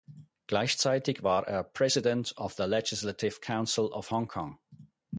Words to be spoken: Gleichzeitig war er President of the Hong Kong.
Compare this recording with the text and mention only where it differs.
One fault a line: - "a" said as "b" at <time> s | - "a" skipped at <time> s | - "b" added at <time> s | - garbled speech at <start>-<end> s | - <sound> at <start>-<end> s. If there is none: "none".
- "Legislative Council of" added at 2.6 s